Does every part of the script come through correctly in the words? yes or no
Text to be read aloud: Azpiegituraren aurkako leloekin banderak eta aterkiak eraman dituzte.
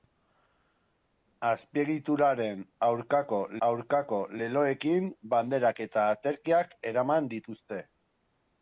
no